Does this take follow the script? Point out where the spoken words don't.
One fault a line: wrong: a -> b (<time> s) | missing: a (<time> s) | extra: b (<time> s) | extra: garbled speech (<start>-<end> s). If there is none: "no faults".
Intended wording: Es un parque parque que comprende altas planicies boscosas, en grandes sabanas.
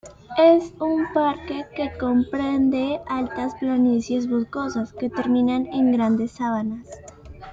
missing: parque (1.7 s)
extra: que terminan (4.9 s)